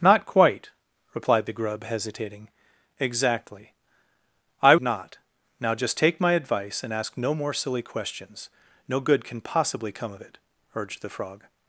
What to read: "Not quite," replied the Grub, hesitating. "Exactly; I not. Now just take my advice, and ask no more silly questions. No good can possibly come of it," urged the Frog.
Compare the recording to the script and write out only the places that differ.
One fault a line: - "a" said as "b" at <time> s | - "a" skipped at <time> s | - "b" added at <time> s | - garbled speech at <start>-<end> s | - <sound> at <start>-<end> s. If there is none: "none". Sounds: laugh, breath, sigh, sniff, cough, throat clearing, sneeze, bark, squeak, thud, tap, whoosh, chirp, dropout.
none